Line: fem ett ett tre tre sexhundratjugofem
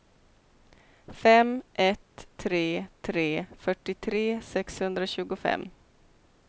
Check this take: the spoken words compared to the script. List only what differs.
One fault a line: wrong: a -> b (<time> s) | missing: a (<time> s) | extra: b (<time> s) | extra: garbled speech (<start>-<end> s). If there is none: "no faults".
wrong: ett -> tre (2.4 s)
wrong: tre -> fyrtiotre (3.6 s)